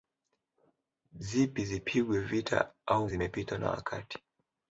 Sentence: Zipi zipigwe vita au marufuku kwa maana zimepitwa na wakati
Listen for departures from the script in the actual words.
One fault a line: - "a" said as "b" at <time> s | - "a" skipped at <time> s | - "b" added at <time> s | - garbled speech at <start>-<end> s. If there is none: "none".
- "marufuku kwa maana" skipped at 3.1 s